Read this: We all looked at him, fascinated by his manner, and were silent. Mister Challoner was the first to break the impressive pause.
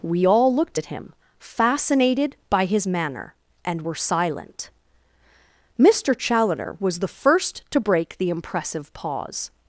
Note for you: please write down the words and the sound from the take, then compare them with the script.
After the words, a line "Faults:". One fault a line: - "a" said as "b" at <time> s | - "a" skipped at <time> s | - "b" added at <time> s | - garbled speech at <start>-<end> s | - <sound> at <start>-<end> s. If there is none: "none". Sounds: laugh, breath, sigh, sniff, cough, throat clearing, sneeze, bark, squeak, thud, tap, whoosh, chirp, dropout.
We all looked at him, fascinated by his manner, and were silent. Mister Challoner was the first to break the impressive pause.
Faults:
none